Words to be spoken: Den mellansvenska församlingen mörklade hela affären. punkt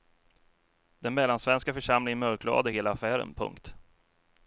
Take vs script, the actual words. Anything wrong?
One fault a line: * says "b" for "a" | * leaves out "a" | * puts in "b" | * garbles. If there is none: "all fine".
all fine